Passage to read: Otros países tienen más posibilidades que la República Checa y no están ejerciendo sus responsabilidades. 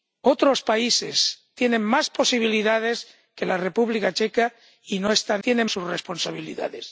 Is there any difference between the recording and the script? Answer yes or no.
yes